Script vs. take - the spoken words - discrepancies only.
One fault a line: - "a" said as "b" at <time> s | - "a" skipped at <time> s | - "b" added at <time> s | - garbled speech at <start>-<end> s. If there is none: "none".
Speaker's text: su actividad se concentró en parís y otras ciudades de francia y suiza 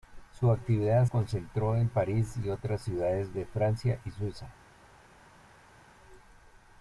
- "se" skipped at 1.1 s